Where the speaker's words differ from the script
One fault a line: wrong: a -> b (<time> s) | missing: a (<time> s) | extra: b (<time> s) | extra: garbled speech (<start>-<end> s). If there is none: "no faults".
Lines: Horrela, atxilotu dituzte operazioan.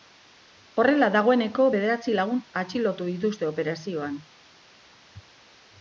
extra: dagoeneko bederatzi lagun (1.1 s)